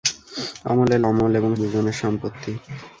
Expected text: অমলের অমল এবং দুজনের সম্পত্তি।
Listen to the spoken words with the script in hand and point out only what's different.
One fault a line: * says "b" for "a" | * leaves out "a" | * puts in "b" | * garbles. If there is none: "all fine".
all fine